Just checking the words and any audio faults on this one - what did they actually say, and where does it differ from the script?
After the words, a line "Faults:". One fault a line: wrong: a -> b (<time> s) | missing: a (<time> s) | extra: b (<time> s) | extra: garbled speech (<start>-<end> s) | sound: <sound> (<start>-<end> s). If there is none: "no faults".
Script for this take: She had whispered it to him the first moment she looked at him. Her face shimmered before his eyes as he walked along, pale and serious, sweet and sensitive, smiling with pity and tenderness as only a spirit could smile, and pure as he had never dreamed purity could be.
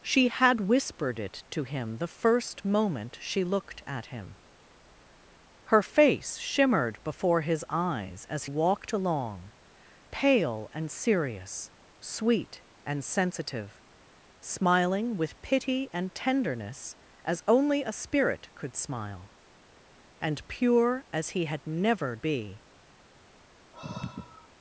She had whispered it to him the first moment she looked at him. Her face shimmered before his eyes as walked along, pale and serious, sweet and sensitive, smiling with pity and tenderness as only a spirit could smile, and pure as he had never be.
Faults:
missing: he (8.4 s)
missing: dreamed purity could (22.2 s)
sound: sigh (23.7-24.5 s)